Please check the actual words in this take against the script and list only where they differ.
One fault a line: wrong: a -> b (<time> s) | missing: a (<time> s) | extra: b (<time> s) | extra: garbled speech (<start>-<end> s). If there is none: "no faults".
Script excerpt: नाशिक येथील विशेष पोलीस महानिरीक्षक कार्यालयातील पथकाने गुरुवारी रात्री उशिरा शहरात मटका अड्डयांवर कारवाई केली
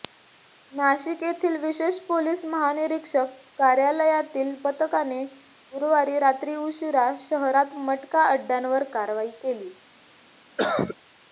no faults